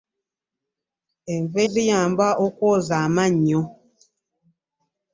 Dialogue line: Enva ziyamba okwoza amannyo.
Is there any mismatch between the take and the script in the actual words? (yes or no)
no